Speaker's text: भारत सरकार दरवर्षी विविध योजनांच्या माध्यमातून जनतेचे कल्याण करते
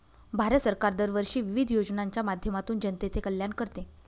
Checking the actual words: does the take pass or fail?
pass